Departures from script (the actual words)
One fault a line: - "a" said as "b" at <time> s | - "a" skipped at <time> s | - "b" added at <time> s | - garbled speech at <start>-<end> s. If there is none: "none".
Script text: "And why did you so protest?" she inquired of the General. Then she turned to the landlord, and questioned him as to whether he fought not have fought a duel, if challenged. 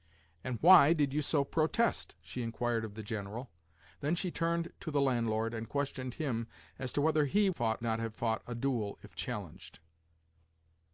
none